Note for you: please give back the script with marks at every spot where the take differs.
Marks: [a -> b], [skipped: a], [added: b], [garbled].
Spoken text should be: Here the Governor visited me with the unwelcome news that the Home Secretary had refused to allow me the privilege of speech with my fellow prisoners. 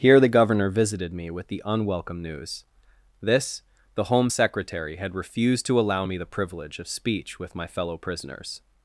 Here the Governor visited me with the unwelcome news [that -> this] the Home Secretary had refused to allow me the privilege of speech with my fellow prisoners.